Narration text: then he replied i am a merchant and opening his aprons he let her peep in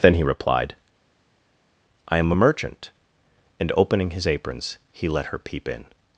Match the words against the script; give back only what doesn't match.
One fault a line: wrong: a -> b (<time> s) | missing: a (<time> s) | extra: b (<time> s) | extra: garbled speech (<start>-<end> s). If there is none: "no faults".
no faults